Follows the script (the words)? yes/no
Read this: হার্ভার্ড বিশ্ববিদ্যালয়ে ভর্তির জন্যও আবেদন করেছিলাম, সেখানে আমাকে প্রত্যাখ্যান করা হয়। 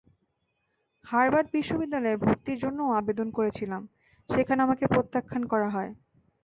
yes